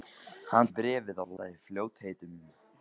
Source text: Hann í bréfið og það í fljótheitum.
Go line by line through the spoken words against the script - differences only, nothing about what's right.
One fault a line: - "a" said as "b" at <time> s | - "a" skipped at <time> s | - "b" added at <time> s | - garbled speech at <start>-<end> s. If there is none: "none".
none